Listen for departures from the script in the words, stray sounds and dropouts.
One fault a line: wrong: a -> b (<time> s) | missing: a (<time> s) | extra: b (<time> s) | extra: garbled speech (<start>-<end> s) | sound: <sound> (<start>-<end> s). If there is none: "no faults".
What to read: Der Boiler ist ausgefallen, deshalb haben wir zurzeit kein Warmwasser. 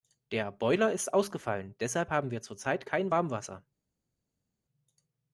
no faults